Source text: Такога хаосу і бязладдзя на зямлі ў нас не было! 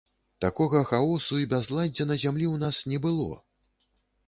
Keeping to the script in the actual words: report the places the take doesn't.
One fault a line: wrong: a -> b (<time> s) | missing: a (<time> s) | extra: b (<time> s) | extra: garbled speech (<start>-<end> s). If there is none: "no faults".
no faults